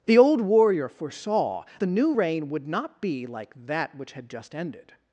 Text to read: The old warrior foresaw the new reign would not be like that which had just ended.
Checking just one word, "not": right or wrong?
right